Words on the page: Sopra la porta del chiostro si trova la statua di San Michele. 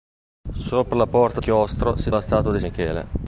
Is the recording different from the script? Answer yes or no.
yes